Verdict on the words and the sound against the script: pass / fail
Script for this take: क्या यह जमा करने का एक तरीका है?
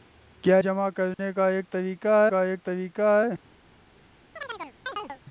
fail